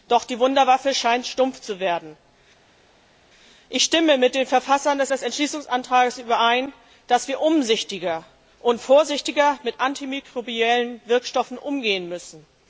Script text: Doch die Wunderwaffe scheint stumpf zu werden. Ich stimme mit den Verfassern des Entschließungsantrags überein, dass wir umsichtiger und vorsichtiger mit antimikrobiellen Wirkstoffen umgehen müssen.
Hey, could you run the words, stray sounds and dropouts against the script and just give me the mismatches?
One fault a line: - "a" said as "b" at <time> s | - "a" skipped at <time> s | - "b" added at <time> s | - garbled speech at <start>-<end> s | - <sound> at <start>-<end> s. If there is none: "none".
- "des" added at 5.1 s